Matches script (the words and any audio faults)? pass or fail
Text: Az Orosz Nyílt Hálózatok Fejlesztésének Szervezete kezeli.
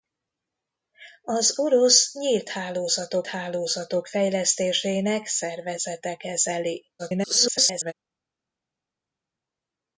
fail